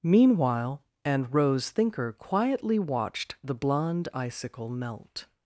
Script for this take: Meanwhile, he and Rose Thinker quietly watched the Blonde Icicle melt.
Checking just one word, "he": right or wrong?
wrong